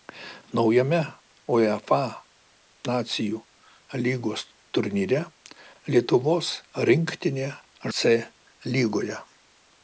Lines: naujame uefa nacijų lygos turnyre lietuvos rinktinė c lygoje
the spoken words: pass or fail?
pass